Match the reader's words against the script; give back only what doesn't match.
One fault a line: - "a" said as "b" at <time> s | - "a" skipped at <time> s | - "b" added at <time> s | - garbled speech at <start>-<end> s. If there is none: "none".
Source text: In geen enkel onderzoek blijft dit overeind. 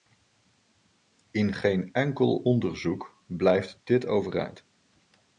none